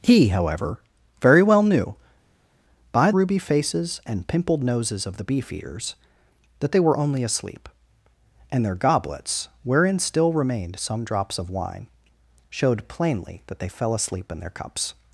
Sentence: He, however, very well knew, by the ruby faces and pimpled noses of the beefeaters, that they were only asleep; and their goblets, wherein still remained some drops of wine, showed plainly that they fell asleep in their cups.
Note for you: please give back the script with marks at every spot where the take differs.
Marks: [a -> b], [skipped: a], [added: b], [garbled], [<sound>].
He, however, very well knew, by [skipped: the] ruby faces and pimpled noses of the beefeaters, that they were only asleep; and their goblets, wherein still remained some drops of wine, showed plainly that they fell asleep in their cups.